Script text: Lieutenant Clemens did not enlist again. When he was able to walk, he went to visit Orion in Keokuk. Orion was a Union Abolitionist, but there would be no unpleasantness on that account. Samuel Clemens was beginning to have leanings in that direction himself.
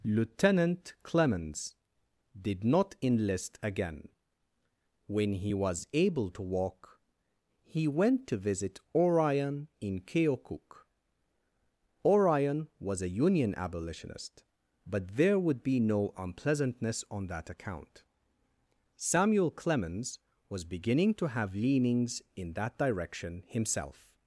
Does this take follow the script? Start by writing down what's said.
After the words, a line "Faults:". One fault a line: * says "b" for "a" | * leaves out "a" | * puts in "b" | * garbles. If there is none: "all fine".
Lieutenant Clemens did not enlist again. When he was able to walk, he went to visit Orion in Keokuk. Orion was a Union Abolitionist, but there would be no unpleasantness on that account. Samuel Clemens was beginning to have leanings in that direction himself.
Faults:
all fine